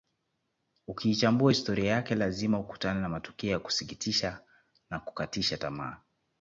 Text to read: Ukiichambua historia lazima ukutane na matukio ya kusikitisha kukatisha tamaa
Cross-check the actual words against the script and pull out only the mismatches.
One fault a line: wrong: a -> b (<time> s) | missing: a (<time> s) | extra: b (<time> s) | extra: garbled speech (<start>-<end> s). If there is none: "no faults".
extra: yake (1.9 s)
extra: na (4.9 s)